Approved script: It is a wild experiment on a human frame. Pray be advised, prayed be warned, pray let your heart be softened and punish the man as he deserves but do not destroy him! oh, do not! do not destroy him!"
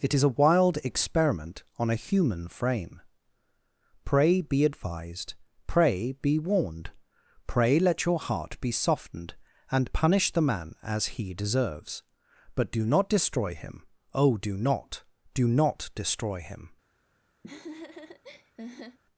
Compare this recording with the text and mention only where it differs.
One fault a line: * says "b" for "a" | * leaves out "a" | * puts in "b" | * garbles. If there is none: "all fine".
* says "pray" for "prayed"